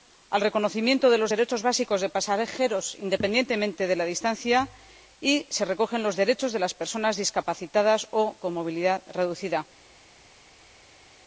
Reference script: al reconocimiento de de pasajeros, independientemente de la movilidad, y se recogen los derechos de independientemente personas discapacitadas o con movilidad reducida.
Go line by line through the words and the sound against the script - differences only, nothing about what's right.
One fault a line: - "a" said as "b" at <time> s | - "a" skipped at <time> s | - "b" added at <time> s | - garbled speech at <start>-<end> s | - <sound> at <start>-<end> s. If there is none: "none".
- "los derechos básicos" added at 1.2 s
- "movilidad" said as "distancia" at 4.0 s
- "independientemente" said as "las" at 6.6 s